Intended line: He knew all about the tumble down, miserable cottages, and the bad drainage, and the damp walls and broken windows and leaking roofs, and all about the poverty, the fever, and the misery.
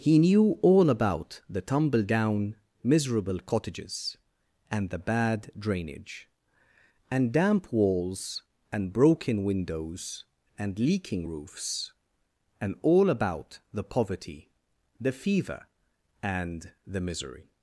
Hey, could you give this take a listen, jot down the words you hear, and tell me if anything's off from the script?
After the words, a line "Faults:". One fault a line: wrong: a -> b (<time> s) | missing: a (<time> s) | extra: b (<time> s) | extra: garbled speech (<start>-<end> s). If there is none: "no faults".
He knew all about the tumble down, miserable cottages, and the bad drainage, and damp walls and broken windows and leaking roofs, and all about the poverty, the fever, and the misery.
Faults:
missing: the (7.3 s)